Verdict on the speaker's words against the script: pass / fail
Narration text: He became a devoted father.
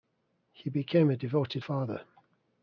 pass